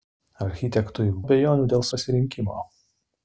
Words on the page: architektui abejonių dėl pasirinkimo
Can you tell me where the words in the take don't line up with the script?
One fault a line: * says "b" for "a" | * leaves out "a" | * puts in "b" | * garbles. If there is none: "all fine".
all fine